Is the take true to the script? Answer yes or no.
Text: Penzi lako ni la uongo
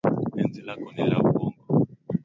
yes